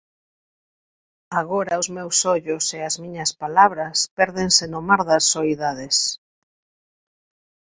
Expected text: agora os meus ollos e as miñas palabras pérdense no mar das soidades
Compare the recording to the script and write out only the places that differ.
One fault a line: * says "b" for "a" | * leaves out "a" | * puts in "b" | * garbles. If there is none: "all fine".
all fine